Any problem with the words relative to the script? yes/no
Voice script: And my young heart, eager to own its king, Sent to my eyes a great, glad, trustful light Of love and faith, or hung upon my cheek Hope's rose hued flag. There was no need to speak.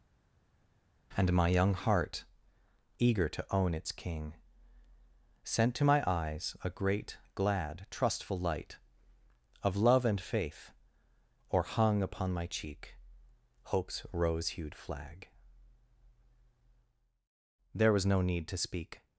no